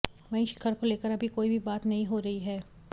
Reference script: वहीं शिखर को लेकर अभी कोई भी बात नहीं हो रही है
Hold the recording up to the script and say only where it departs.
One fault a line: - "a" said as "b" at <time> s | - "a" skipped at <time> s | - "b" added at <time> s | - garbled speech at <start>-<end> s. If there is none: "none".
none